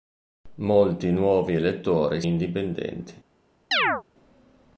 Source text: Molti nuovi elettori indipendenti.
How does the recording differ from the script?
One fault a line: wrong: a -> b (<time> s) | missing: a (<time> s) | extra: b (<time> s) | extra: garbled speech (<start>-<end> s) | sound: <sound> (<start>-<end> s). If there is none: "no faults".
sound: chirp (3.7-4.0 s)